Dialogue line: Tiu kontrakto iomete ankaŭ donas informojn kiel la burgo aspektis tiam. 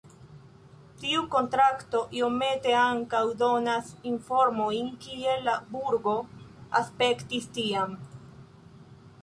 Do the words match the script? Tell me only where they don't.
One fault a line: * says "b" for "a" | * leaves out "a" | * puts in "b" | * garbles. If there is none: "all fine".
all fine